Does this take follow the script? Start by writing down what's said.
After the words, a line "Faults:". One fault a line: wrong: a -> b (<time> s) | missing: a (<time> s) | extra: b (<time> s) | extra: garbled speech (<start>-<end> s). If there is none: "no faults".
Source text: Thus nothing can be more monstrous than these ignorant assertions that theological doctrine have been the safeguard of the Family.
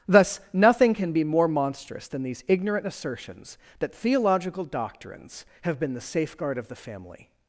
Thus nothing can be more monstrous than these ignorant assertions that theological doctrines have been the safeguard of the Family.
Faults:
wrong: doctrine -> doctrines (4.6 s)